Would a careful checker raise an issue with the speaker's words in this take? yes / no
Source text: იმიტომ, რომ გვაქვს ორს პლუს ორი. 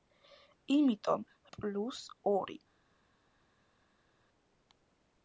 yes